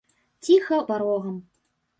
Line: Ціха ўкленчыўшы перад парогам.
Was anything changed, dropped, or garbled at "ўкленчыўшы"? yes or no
yes